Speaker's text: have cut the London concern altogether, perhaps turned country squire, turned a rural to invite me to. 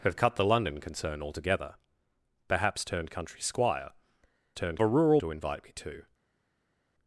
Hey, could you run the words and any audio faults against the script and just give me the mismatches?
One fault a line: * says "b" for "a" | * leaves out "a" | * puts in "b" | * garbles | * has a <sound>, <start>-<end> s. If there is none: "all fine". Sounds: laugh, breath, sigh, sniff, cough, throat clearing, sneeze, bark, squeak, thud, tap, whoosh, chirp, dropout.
all fine